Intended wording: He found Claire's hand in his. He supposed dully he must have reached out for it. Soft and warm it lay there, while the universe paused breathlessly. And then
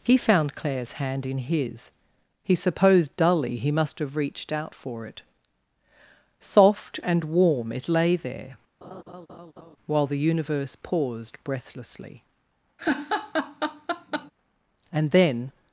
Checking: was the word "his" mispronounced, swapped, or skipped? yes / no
no